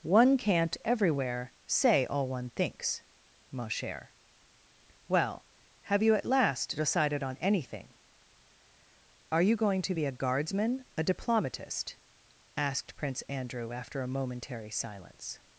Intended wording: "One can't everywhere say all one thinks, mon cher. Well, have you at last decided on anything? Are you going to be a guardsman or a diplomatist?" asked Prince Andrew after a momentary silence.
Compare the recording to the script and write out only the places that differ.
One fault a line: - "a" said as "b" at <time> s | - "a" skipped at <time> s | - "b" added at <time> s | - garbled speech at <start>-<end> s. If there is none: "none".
- "or" skipped at 10.9 s